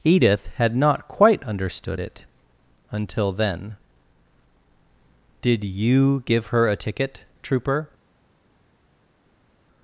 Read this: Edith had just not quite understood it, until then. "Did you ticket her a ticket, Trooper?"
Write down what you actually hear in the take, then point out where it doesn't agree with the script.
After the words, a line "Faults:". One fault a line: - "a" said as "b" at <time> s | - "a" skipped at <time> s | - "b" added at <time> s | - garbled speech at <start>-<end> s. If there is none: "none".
Edith had not quite understood it, until then. "Did you give her a ticket, Trooper?"
Faults:
- "just" skipped at 0.8 s
- "ticket" said as "give" at 6.2 s